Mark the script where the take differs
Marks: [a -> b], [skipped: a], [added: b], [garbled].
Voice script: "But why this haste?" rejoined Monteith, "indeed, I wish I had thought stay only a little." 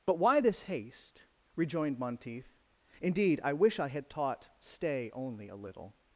"But why this haste?" rejoined Monteith, "indeed, I wish I had [thought -> taught] stay only a little."